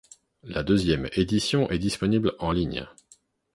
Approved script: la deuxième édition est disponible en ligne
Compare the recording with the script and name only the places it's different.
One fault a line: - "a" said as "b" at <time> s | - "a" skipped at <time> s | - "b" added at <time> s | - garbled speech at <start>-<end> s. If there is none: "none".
none